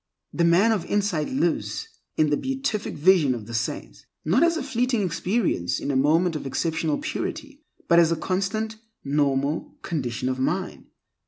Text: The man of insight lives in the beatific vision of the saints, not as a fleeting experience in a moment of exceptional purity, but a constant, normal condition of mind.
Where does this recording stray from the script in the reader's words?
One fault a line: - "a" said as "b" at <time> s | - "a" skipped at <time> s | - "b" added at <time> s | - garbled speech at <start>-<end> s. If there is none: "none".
- "as" added at 8.0 s